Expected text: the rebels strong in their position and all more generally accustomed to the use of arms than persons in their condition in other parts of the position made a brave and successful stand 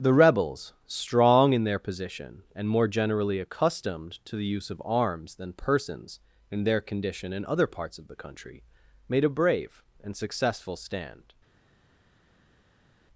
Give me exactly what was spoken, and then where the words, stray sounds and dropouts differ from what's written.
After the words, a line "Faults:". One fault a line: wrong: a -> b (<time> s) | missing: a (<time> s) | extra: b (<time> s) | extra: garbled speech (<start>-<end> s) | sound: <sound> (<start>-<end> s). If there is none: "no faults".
the rebels strong in their position and more generally accustomed to the use of arms than persons in their condition in other parts of the country made a brave and successful stand
Faults:
missing: all (2.7 s)
wrong: position -> country (8.2 s)